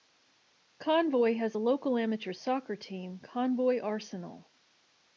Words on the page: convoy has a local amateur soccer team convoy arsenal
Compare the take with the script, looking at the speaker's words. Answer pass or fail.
pass